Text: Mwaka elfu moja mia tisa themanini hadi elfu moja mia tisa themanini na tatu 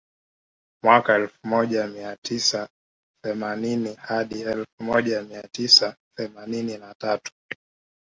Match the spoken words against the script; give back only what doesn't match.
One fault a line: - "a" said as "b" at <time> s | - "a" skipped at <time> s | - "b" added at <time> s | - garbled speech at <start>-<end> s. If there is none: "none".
none